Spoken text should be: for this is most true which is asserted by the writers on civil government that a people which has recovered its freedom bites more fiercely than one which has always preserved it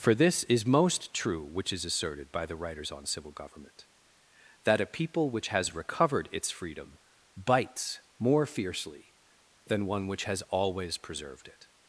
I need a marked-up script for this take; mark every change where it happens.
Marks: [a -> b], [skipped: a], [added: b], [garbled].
for this is most true which is asserted by the writers on civil government that a people which has recovered its freedom bites more fiercely than one which has always preserved it